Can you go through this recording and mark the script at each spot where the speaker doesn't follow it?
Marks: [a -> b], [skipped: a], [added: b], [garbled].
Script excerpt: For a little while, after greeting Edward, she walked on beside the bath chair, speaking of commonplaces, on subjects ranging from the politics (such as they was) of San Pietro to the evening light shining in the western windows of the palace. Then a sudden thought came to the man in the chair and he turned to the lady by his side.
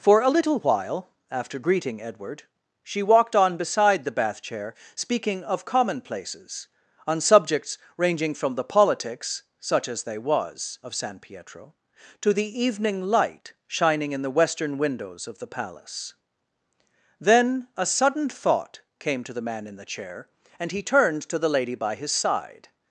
For a little while, after greeting Edward, she walked on beside the bath chair, speaking of commonplaces, on subjects ranging from the politics (such as they was) of San Pietro to the evening light shining in the western windows of the palace. Then a sudden thought came to the man in the chair and he turned to the lady by his side.